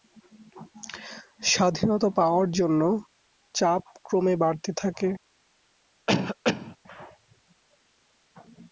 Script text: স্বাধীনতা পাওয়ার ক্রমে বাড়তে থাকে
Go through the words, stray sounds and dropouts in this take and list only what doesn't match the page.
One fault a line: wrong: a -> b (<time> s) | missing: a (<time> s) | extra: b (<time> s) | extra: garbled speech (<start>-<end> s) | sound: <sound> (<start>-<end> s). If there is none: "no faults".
extra: জন্য চাপ (2.5 s)
sound: cough (6.1-6.8 s)